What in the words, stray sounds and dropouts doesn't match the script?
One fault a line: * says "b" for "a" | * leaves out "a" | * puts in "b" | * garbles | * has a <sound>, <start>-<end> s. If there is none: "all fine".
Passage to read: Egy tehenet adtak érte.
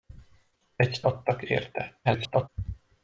* leaves out "tehenet"
* garbles